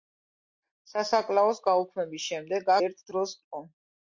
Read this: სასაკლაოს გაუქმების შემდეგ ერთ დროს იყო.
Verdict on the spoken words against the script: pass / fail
pass